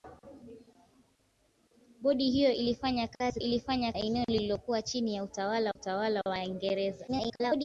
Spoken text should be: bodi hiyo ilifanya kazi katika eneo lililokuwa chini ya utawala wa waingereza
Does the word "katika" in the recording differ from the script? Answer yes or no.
yes